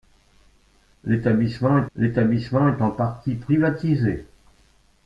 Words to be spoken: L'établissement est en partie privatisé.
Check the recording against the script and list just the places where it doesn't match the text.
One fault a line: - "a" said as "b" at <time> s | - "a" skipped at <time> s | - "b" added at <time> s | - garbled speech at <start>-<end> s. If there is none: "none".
- "l'établissement est" added at 1.9 s